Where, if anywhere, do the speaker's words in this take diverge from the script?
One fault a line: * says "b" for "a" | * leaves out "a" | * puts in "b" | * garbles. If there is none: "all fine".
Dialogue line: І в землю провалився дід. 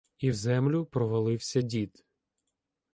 all fine